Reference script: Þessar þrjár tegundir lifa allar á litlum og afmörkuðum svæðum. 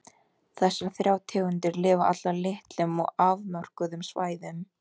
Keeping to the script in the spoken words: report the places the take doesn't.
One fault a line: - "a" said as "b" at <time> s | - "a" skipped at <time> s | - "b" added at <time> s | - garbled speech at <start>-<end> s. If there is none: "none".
none